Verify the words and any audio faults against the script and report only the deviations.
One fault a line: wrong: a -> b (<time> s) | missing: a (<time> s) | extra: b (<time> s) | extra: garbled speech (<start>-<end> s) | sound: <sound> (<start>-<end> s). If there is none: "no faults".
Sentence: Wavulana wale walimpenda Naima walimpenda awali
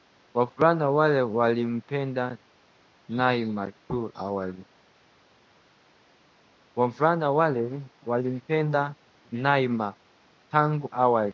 wrong: walimpenda -> tangu (10.5 s)